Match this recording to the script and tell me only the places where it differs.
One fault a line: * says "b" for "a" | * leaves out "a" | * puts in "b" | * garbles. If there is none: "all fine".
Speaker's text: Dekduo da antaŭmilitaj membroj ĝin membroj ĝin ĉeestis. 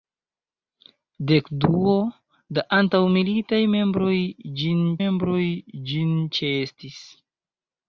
all fine